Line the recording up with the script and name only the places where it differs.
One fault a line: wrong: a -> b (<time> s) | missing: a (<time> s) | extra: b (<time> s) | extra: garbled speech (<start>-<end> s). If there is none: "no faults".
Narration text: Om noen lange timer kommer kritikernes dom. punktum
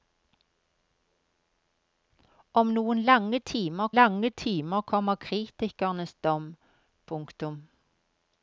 extra: lange timer (4.0 s)